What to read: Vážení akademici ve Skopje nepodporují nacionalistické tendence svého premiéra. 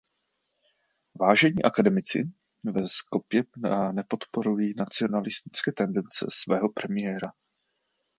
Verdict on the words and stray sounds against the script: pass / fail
pass